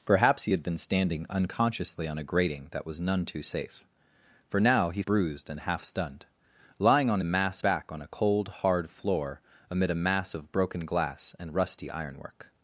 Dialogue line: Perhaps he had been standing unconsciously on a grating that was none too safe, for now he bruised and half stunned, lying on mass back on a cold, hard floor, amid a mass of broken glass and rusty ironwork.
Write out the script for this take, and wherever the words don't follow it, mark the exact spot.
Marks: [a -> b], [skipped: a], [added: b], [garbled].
Perhaps he had been standing unconsciously on a grating that was none too safe, for now he bruised and half stunned, lying on mass back on a cold, hard floor, amid a mass of broken glass and rusty ironwork.